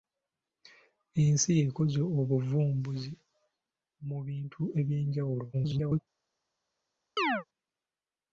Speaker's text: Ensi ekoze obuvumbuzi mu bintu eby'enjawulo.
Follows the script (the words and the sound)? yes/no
no